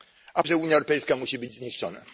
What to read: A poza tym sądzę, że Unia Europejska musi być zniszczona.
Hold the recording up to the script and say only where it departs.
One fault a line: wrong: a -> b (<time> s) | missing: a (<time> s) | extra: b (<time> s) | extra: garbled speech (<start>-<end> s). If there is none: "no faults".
missing: poza tym sądzę (0.4 s)